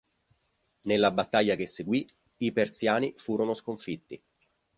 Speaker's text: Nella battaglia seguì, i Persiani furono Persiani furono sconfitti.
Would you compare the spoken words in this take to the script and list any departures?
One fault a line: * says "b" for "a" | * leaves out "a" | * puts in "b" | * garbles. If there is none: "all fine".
* puts in "che"
* leaves out "Persiani furono"